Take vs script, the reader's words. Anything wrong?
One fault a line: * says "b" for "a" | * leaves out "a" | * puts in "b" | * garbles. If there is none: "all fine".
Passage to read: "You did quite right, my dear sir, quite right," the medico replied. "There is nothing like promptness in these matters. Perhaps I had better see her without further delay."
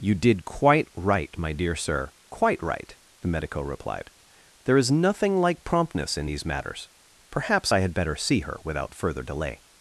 all fine